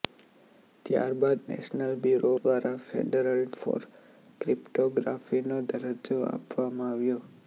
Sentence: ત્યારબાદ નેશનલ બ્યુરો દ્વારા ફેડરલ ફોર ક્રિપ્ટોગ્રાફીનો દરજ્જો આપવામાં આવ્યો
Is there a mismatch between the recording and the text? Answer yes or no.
no